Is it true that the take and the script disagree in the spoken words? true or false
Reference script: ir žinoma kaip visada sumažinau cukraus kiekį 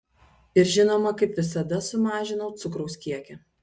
false